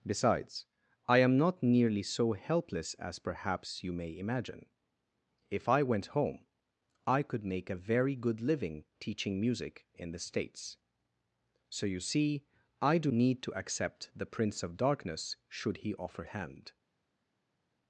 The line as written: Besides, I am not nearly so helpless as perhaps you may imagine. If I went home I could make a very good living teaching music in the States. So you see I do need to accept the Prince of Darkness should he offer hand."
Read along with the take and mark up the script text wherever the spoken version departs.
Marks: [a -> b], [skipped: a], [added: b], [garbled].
Besides, I am not nearly so helpless as perhaps you may imagine. If I went home I could make a very good living teaching music in the States. So you see I do need to accept the Prince of Darkness should he offer hand."